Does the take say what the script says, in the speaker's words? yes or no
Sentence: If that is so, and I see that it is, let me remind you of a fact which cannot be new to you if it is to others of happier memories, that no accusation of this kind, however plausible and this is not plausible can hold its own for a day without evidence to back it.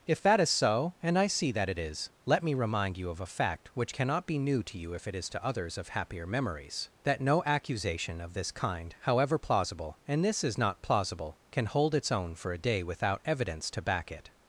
yes